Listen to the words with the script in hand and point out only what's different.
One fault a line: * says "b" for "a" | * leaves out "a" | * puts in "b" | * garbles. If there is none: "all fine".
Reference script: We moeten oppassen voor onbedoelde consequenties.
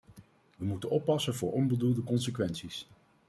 all fine